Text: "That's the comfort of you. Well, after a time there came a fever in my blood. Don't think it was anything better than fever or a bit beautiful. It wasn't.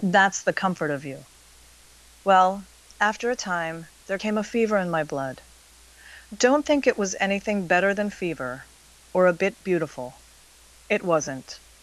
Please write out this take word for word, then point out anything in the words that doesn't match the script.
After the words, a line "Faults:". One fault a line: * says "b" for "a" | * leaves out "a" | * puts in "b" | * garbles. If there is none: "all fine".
"That's the comfort of you. Well, after a time there came a fever in my blood. Don't think it was anything better than fever or a bit beautiful. It wasn't.
Faults:
all fine